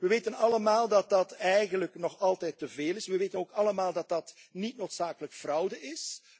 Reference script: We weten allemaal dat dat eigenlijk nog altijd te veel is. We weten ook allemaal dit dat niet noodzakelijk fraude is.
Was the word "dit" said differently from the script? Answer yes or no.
yes